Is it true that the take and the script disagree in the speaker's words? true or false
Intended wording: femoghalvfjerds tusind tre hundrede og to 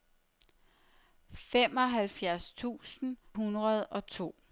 true